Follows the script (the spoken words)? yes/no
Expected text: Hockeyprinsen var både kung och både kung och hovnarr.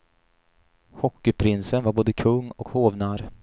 no